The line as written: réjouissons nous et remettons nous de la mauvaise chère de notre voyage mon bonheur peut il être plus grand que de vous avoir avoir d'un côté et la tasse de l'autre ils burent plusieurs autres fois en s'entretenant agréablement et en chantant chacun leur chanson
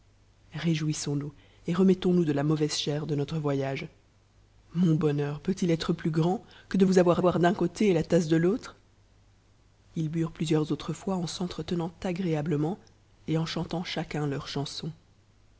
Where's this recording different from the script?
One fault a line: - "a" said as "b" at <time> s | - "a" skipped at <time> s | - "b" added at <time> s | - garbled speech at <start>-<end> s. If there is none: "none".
none